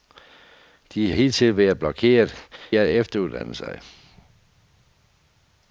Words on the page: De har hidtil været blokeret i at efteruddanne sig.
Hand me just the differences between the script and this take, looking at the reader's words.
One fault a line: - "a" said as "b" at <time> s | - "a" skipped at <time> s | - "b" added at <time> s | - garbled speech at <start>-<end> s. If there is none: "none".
- "har" skipped at 1.1 s
- "i" skipped at 2.5 s